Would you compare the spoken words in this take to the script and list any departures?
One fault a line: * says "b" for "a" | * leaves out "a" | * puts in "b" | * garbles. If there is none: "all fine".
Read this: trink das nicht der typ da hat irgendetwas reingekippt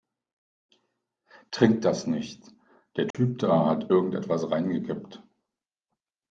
all fine